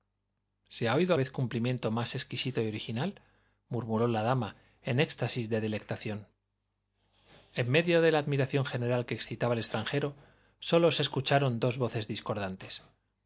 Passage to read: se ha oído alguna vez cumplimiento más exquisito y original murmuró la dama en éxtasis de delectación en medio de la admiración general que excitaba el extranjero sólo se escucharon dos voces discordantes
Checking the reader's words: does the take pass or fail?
fail